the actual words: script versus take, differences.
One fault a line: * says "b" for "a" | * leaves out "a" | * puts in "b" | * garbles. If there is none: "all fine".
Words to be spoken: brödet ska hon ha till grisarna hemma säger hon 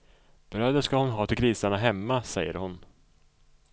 all fine